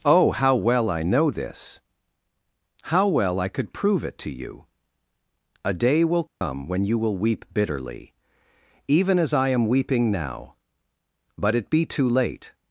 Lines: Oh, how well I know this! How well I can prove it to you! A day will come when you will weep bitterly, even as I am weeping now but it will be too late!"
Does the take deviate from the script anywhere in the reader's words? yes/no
yes